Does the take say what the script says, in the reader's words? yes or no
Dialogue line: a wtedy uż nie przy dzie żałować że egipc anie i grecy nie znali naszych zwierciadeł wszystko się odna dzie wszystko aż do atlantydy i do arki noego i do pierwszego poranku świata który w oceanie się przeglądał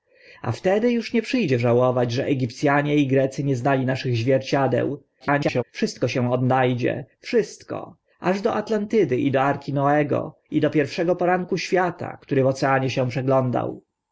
no